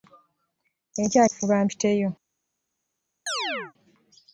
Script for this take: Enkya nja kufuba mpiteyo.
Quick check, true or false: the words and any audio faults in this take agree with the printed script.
false